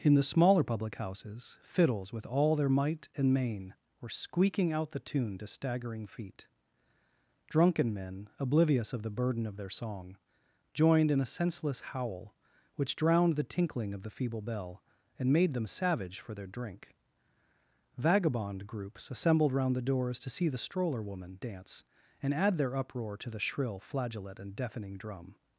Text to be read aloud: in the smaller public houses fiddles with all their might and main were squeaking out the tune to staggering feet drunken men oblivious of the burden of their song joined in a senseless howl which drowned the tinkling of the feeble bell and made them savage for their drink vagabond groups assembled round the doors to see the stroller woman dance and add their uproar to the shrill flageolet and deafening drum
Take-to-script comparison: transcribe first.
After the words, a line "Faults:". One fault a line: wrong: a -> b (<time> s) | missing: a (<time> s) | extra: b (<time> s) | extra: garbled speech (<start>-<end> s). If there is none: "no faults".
in the smaller public houses fiddles with all their might and main were squeaking out the tune to staggering feet drunken men oblivious of the burden of their song joined in a senseless howl which drowned the tinkling of the feeble bell and made them savage for their drink vagabond groups assembled round the doors to see the stroller woman dance and add their uproar to the shrill flageolet and deafening drum
Faults:
no faults